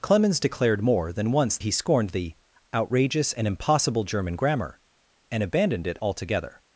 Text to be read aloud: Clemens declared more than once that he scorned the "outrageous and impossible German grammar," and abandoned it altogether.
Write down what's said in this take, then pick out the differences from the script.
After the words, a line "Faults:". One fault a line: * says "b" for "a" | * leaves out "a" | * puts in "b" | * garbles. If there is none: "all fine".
Clemens declared more than once he scorned the "outrageous and impossible German grammar," and abandoned it altogether.
Faults:
* leaves out "that"